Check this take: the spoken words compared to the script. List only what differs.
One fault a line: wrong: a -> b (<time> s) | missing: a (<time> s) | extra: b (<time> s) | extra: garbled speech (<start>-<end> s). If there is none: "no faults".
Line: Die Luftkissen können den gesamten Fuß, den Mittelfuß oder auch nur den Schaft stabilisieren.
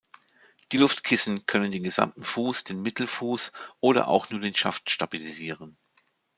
no faults